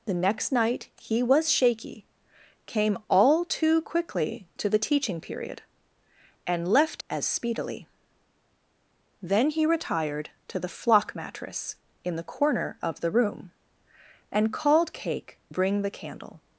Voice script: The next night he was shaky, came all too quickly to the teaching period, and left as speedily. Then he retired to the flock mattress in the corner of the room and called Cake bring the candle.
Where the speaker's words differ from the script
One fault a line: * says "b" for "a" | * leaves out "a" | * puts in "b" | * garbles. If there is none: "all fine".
all fine